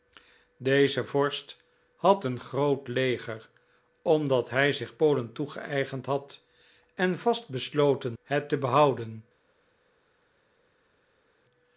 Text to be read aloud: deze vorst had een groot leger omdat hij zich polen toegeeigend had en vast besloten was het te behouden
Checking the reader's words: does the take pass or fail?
fail